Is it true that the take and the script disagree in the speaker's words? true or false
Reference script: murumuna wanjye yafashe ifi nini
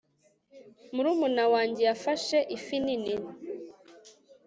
false